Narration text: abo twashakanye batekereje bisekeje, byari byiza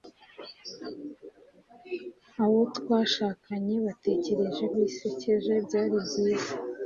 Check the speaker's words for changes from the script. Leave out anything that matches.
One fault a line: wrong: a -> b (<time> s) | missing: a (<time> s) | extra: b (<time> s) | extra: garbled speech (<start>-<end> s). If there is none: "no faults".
no faults